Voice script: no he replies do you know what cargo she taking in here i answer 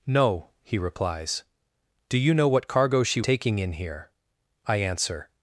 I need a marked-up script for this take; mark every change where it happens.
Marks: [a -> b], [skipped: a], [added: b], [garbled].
no he replies do you know what cargo she taking in here i answer